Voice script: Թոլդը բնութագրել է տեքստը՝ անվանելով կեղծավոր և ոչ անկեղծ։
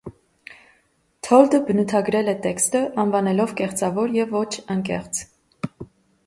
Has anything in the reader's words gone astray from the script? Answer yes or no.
no